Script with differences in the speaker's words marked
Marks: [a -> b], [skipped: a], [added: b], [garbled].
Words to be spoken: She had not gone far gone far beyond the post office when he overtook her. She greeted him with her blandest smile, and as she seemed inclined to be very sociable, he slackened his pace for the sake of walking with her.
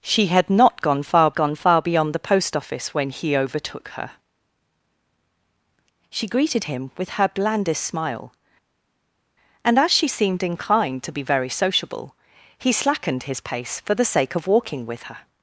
She had not gone far gone far beyond the post office when he overtook her. She greeted him with her blandest smile, and as she seemed inclined to be very sociable, he slackened his pace for the sake of walking with her.